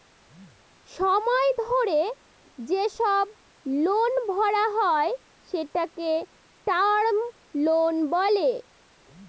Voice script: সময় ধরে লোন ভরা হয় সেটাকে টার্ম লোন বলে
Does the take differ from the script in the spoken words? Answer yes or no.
yes